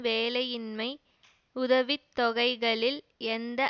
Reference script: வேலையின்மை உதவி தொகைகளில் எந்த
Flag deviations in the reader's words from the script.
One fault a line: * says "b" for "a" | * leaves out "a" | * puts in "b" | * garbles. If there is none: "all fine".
all fine